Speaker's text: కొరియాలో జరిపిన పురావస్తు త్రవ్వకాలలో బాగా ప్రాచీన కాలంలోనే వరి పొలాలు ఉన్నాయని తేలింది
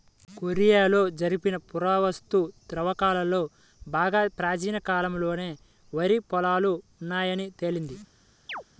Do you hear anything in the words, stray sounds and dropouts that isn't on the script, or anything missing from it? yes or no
yes